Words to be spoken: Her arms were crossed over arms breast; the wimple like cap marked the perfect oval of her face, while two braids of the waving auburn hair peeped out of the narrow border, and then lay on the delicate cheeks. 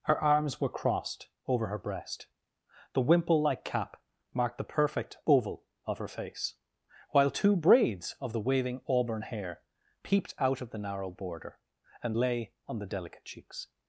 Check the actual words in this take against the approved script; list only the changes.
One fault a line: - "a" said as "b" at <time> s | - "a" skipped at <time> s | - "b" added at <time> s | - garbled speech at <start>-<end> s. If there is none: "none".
- "arms" said as "her" at 1.7 s
- "then" skipped at 12.2 s